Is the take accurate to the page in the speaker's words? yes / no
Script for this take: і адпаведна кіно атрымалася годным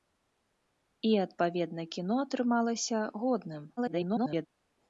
no